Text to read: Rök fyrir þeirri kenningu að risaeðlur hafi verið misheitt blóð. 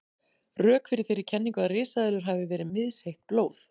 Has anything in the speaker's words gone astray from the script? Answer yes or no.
no